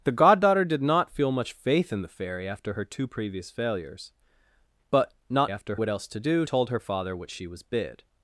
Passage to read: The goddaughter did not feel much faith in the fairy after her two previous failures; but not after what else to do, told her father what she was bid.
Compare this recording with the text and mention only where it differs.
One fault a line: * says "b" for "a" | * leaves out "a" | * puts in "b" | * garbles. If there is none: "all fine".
all fine